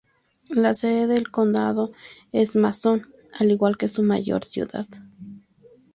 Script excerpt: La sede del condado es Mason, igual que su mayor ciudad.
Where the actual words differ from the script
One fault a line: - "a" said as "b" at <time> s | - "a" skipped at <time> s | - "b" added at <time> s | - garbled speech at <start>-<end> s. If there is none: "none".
- "al" added at 3.4 s